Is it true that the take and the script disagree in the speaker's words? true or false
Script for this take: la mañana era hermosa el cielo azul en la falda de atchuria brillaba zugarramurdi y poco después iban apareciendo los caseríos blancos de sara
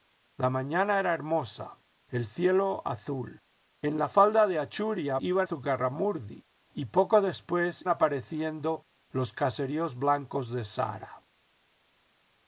true